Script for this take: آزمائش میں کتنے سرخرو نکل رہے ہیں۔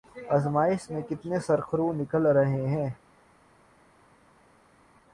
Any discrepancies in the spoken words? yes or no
no